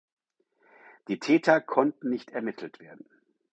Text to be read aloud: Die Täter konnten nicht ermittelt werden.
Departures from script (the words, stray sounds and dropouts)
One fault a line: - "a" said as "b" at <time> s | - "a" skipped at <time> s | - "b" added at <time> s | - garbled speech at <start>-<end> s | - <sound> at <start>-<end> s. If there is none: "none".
none